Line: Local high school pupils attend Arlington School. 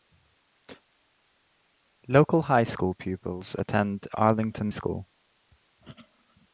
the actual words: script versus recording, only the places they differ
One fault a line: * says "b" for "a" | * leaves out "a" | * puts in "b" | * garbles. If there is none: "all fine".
all fine